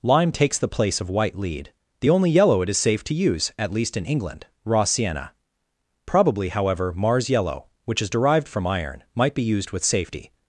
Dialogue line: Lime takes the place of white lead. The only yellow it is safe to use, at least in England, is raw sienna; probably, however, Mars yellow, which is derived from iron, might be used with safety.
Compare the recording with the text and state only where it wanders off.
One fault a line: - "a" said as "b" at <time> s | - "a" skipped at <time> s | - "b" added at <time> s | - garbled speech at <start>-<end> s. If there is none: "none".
- "is" skipped at 4.5 s